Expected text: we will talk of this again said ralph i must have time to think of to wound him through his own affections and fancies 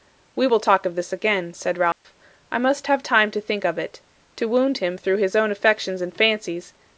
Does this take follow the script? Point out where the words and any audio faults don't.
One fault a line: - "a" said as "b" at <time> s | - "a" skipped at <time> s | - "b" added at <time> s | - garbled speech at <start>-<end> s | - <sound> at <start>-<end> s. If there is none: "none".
- dropout at 1.9-2.0 s
- "it" added at 3.8 s